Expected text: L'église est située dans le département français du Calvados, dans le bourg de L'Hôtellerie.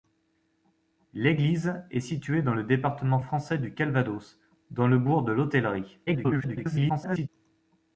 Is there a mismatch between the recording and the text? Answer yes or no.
yes